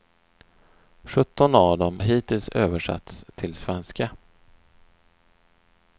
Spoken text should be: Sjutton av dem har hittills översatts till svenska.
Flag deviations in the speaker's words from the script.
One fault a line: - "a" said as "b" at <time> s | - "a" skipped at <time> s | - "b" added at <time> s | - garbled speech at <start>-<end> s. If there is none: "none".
- "har" skipped at 2.0 s